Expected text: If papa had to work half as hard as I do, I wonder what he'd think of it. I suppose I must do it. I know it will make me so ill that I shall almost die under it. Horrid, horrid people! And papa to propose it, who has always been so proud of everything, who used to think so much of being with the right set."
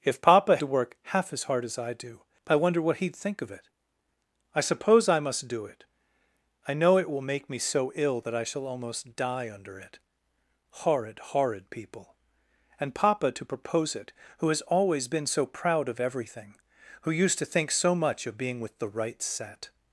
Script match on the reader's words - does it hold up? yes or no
no